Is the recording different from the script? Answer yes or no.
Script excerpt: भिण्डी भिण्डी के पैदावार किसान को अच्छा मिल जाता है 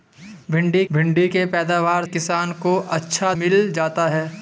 no